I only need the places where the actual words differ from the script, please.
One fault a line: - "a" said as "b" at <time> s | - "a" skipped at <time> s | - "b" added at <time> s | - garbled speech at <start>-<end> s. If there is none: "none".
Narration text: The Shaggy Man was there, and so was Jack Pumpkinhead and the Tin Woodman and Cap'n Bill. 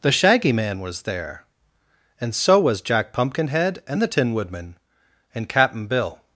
none